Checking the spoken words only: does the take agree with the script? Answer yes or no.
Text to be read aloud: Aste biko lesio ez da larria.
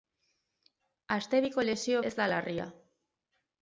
yes